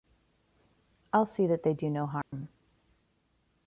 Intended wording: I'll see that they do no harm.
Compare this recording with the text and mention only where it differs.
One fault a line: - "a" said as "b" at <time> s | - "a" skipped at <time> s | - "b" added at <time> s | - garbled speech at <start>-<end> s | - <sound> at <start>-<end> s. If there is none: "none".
- dropout at 2.2-2.3 s